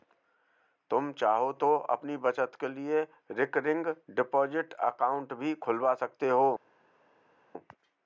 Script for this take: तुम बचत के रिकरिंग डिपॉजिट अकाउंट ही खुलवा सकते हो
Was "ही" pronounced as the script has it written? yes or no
no